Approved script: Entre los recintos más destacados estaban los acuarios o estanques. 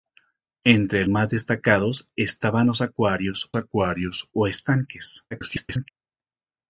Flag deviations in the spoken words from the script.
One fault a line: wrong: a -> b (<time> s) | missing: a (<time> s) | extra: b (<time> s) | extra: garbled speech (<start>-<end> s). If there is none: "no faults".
missing: los recintos (1.1 s)
extra: acuarios (3.6 s)
extra: garbled speech (5.3-5.9 s)